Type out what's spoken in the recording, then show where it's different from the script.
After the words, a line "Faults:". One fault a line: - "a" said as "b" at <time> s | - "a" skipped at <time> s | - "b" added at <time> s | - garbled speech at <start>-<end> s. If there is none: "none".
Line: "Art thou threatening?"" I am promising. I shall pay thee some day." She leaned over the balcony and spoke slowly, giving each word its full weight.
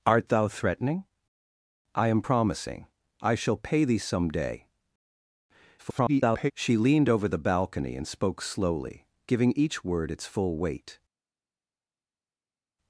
"Art thou threatening?"" I am promising. I shall pay thee some day." [garbled] She leaned over the balcony and spoke slowly, giving each word its full weight.
Faults:
- garbled speech at 5.8-6.5 s